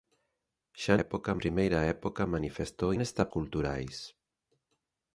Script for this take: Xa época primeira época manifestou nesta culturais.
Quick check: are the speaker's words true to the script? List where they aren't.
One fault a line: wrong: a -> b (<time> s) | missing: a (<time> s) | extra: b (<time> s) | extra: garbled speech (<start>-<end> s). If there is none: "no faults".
no faults